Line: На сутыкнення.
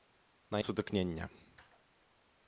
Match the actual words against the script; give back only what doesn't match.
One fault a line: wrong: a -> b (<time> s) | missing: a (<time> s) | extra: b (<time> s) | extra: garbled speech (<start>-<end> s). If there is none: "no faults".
no faults